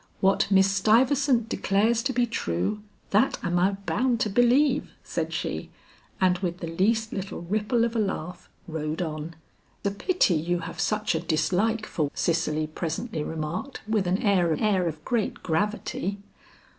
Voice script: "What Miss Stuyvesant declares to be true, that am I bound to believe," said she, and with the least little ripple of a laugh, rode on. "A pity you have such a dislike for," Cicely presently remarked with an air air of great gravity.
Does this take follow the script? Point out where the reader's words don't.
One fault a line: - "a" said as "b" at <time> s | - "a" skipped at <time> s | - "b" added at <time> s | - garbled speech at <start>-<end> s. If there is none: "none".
none